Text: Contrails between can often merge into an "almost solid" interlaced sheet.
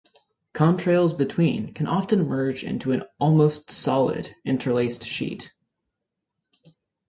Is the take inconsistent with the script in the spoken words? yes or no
no